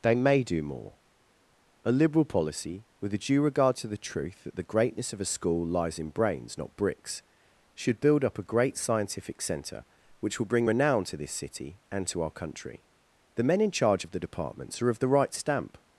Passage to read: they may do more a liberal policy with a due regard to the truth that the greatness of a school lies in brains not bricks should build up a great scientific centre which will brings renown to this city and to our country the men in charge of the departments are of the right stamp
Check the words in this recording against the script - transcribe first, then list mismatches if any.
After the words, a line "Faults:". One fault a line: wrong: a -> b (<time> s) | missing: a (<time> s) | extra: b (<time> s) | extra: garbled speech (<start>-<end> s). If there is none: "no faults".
they may do more a liberal policy with a due regard to the truth that the greatness of a school lies in brains not bricks should build up a great scientific centre which will bring renown to this city and to our country the men in charge of the departments are of the right stamp
Faults:
wrong: brings -> bring (10.5 s)